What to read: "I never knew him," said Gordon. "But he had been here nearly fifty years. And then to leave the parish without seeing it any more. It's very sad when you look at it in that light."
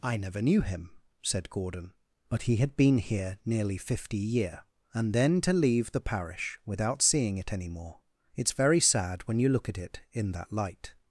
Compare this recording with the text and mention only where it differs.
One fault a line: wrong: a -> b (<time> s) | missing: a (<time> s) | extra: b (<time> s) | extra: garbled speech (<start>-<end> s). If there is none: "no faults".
wrong: years -> year (4.2 s)